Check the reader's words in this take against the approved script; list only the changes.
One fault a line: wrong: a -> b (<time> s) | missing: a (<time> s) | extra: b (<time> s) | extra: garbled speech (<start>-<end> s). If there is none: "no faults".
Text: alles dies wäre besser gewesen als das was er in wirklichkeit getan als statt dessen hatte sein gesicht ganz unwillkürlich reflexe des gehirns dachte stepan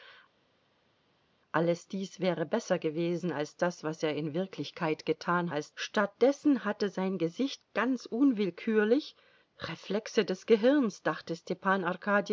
no faults